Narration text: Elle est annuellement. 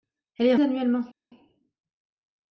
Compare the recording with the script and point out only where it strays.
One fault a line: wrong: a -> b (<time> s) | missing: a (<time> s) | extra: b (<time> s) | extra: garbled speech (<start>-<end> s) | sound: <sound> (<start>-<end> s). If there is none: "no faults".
no faults